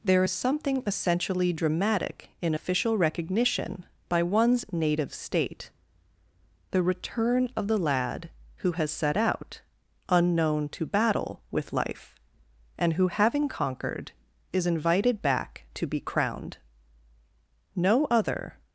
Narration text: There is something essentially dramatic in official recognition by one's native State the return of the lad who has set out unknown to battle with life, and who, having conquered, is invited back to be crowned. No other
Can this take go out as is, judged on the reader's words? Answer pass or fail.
pass